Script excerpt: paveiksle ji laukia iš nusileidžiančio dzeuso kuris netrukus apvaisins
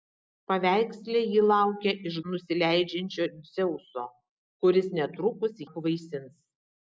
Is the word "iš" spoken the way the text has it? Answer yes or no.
yes